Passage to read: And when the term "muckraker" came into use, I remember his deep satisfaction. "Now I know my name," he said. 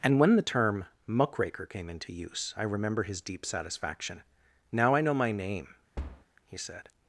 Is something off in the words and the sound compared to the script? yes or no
yes